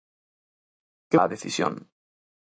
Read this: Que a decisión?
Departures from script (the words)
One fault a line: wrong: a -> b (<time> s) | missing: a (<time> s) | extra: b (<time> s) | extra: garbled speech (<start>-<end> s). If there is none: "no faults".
no faults